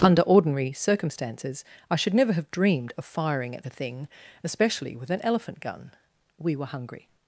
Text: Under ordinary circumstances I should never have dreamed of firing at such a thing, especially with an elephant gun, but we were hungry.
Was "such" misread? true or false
true